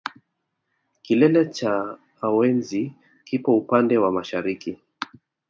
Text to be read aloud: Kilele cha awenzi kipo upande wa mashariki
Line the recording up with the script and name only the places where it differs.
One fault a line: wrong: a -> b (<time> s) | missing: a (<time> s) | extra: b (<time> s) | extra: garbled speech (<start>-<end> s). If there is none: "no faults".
no faults